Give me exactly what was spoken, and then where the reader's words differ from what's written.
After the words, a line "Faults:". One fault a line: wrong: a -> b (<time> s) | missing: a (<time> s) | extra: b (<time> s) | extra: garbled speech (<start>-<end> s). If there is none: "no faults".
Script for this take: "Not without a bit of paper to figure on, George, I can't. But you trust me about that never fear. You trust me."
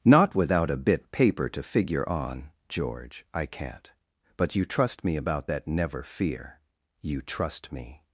"Not without a bit paper to figure on, George, I can't. But you trust me about that never fear. You trust me."
Faults:
missing: of (1.1 s)